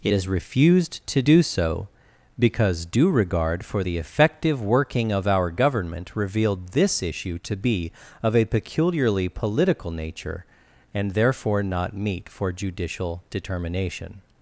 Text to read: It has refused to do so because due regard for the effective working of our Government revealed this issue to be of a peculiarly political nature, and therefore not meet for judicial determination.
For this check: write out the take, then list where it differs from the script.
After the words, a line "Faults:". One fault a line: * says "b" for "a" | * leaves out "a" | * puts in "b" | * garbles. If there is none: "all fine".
It has refused to do so because due regard for the effective working of our Government revealed this issue to be of a peculiarly political nature, and therefore not meet for judicial determination.
Faults:
all fine